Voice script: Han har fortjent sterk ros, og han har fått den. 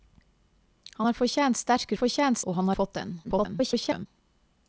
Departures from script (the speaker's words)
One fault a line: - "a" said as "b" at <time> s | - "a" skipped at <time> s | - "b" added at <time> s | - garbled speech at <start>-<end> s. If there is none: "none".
- "ros" said as "fortjent" at 2.0 s
- "har" skipped at 2.7 s
- garbled speech at 3.2-4.1 s